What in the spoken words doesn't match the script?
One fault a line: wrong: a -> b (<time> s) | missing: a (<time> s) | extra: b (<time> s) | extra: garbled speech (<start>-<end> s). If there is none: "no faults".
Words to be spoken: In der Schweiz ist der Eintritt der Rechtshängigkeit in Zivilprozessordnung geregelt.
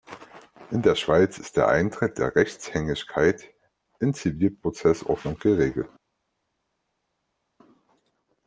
no faults